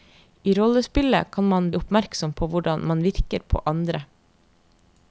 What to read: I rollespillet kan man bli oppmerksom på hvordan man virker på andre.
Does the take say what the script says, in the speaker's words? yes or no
no